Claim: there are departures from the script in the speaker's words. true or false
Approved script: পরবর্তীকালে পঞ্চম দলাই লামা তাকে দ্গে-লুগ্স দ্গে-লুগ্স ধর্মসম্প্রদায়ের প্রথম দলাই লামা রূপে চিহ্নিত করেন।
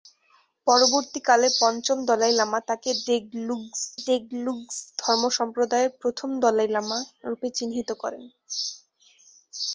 false